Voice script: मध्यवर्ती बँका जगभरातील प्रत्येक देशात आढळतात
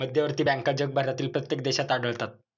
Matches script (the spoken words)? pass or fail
pass